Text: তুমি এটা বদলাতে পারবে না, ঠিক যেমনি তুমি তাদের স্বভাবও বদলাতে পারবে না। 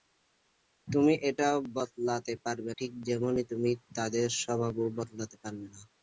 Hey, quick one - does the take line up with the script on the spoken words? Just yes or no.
no